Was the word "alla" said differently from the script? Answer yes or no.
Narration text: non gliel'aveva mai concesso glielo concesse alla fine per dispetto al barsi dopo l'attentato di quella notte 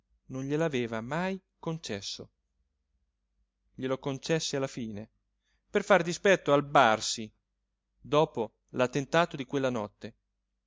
no